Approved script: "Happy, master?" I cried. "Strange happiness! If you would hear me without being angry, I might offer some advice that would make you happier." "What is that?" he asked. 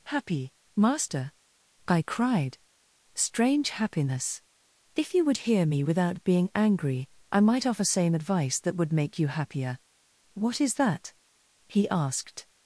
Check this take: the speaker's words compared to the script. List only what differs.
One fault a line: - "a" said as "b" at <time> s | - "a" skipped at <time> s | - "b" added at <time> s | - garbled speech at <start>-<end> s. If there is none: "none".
- "some" said as "same" at 7.8 s